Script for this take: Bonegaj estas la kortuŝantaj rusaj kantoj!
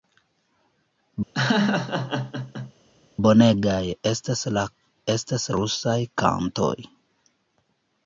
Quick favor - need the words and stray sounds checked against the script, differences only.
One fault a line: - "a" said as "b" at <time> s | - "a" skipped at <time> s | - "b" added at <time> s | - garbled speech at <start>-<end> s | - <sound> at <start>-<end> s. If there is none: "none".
- laugh at 1.3-2.7 s
- "kortuŝantaj" said as "estas" at 5.2 s